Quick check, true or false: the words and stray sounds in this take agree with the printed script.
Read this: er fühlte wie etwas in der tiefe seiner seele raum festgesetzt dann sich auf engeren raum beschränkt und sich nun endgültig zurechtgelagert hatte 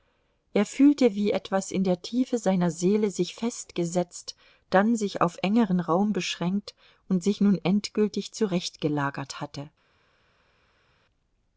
false